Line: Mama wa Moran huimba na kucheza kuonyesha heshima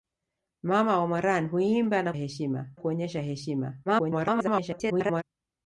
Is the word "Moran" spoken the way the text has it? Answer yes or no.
yes